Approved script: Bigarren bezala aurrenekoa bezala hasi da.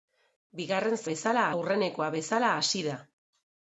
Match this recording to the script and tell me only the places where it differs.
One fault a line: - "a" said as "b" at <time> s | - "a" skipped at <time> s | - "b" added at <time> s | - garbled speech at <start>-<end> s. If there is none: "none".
none